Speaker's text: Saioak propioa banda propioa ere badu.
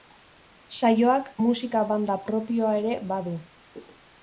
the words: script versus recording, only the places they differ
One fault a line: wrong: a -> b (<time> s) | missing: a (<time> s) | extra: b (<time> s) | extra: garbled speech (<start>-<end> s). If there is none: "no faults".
wrong: propioa -> musika (1.5 s)